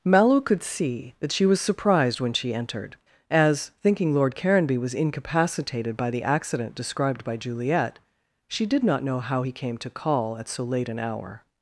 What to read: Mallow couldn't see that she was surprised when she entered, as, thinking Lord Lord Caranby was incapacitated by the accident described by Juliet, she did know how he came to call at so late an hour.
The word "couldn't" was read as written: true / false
false